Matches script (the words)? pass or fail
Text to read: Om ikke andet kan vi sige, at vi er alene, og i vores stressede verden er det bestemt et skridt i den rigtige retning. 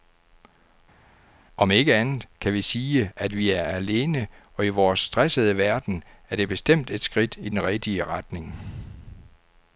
pass